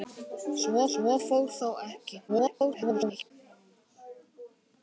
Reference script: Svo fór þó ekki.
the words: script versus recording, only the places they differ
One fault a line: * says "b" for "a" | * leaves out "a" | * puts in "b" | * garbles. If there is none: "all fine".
* puts in "svo"
* garbles